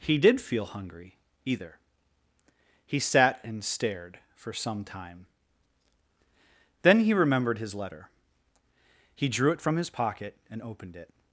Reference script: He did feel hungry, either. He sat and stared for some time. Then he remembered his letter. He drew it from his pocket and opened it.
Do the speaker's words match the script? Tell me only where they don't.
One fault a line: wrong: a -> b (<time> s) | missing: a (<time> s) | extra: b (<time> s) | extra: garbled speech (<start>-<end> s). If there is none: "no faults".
no faults